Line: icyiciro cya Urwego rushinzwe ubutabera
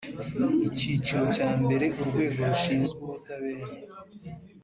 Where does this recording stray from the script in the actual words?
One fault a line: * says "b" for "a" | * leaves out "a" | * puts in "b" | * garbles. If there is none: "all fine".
* puts in "mbere"